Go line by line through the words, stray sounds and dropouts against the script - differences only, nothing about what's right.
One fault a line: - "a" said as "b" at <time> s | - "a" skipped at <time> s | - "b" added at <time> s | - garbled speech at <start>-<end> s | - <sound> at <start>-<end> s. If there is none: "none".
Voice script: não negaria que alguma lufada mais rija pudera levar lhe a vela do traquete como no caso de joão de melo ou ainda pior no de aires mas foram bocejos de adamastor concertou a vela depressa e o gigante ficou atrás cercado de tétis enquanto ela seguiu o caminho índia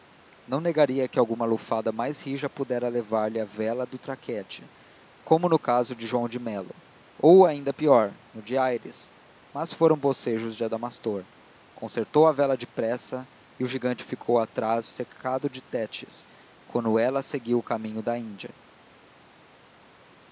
- "da" added at 18.0 s